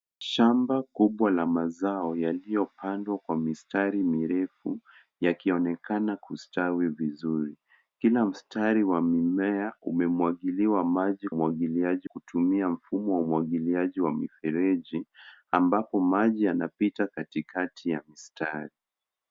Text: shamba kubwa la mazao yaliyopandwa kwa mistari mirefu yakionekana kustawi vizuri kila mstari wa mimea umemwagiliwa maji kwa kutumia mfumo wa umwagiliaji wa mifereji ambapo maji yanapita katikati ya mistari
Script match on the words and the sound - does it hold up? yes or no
no